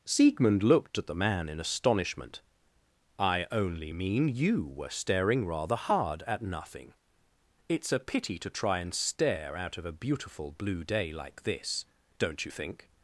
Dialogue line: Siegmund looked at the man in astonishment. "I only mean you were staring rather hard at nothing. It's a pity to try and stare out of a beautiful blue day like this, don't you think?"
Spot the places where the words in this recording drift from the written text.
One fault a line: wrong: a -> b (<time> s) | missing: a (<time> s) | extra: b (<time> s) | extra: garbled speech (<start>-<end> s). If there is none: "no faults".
no faults